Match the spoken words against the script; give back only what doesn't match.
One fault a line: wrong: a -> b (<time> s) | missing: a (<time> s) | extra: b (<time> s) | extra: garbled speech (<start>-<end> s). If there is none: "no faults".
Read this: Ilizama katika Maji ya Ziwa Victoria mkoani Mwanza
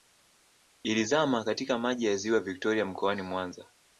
no faults